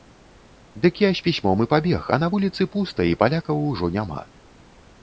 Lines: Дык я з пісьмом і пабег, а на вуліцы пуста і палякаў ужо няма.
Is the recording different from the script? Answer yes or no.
no